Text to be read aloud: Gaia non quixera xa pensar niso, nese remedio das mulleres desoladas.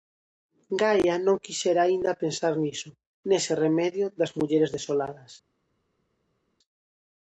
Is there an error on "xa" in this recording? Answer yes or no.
yes